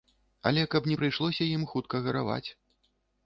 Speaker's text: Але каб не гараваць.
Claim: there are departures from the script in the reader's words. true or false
true